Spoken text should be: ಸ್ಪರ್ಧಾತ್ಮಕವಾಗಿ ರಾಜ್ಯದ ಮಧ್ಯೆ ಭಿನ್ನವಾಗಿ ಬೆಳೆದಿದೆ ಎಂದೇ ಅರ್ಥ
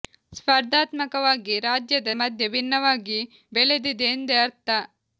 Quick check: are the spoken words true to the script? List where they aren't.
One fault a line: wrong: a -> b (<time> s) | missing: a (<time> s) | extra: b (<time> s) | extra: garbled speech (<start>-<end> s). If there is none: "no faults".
no faults